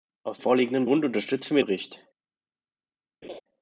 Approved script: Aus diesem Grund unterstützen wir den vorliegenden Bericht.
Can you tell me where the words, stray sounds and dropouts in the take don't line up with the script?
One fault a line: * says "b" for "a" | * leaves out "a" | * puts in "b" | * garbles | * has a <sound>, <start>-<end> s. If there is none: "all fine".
* says "vorliegenden" for "diesem"
* leaves out "den vorliegenden"
* has a laugh, 3.2-3.4 s